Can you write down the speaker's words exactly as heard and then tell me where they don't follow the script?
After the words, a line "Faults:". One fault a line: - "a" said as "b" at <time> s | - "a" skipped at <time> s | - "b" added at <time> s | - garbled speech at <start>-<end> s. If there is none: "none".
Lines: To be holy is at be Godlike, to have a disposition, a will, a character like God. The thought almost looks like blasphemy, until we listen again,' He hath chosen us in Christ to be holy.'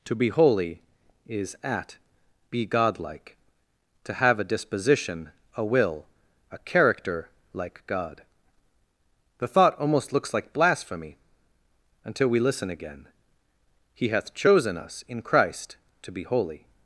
To be holy is at be Godlike, to have a disposition, a will, a character like God. The thought almost looks like blasphemy, until we listen again,' He hath chosen us in Christ to be holy.'
Faults:
none